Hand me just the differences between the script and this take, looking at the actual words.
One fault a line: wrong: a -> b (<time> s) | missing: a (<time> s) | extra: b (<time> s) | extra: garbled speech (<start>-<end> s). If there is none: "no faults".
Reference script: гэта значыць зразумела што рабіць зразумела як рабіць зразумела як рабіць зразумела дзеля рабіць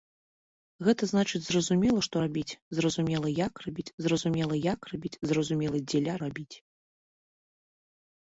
no faults